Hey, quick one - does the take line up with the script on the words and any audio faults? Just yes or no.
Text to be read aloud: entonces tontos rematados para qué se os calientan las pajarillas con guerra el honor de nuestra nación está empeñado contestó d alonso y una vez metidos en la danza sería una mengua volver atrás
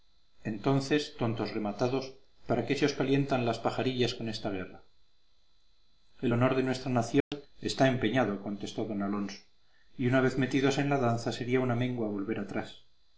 no